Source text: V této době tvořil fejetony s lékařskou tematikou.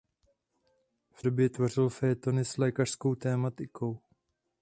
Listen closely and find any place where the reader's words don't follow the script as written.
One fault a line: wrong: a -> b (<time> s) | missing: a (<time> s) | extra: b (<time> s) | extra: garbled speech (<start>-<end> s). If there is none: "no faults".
missing: této (1.2 s)